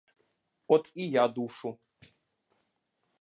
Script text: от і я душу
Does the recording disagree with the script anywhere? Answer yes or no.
no